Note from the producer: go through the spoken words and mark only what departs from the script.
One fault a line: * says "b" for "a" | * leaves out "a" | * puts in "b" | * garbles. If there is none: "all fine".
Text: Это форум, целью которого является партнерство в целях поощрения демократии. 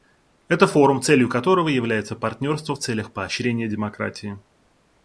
all fine